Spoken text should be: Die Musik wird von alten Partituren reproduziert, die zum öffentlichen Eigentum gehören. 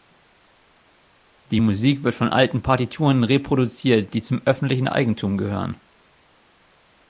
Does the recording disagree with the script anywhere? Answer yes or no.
no